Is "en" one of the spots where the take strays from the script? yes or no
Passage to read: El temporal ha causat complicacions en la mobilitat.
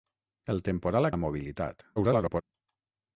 yes